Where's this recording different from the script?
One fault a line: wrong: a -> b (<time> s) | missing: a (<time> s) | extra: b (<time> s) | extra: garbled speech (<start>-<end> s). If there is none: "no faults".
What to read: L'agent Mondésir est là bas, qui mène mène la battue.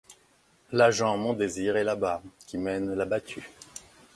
missing: mène (2.9 s)